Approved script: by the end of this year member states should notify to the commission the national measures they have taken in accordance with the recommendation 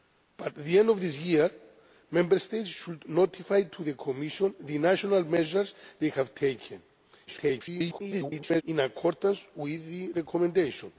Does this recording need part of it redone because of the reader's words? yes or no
yes